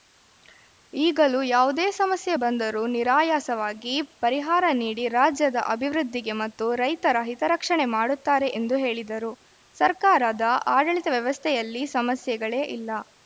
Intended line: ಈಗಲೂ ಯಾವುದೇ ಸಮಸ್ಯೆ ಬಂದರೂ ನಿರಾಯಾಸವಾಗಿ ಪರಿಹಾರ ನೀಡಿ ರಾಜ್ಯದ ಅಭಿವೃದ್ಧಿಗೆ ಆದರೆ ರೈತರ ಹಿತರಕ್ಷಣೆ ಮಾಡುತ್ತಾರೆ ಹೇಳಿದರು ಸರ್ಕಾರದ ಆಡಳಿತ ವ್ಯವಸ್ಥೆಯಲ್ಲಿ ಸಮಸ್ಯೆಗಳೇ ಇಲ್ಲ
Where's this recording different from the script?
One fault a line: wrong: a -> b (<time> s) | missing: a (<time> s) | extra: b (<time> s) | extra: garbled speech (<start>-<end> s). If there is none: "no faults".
wrong: ಆದರೆ -> ಮತ್ತು (6.4 s)
extra: ಎಂದು (8.6 s)